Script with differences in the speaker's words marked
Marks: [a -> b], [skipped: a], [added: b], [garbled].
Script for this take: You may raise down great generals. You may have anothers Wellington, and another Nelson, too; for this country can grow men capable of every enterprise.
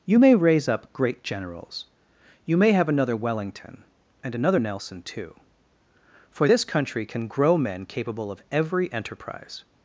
You may raise [down -> up] great generals. You may have [anothers -> another] Wellington, and another Nelson, too; for this country can grow men capable of every enterprise.